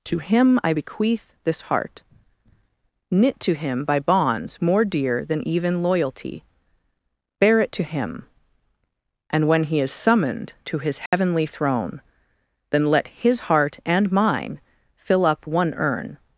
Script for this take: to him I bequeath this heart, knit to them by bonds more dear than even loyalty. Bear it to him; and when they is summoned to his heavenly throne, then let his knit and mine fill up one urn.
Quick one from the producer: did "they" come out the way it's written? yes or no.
no